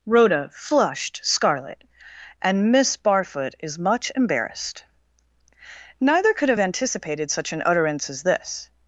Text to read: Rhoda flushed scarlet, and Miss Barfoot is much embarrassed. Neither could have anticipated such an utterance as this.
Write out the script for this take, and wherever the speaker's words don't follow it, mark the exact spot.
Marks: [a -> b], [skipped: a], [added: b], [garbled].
Rhoda flushed scarlet, and Miss Barfoot is much embarrassed. Neither could have anticipated such an utterance as this.